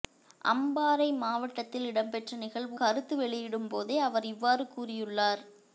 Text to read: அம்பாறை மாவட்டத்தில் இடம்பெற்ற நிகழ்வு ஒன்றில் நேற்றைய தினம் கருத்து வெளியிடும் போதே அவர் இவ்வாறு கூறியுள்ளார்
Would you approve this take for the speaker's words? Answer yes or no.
no